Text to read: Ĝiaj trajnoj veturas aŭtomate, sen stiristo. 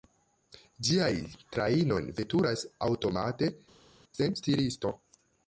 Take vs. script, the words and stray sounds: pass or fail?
pass